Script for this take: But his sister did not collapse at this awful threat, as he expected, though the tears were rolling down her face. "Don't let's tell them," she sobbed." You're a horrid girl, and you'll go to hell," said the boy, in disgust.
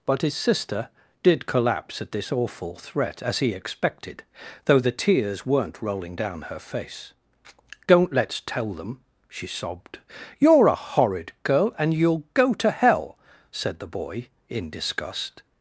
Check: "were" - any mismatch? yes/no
yes